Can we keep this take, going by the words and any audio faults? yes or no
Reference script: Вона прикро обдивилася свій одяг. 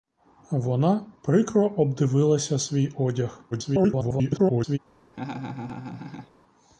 no